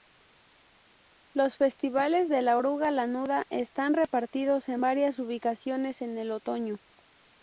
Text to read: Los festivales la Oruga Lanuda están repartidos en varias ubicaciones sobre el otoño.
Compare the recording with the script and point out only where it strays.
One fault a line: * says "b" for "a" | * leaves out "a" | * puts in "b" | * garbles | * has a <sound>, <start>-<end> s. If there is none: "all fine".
* puts in "de"
* says "en" for "sobre"